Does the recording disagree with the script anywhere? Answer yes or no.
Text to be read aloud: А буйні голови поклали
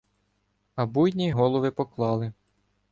no